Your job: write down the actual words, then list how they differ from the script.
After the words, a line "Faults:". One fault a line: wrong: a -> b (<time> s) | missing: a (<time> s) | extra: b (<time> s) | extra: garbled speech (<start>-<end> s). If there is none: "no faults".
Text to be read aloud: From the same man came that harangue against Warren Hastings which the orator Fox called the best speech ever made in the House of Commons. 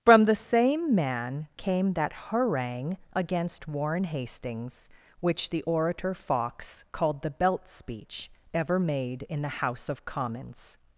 From the same man came that harangue against Warren Hastings which the orator Fox called the belt speech ever made in the House of Commons.
Faults:
wrong: best -> belt (7.3 s)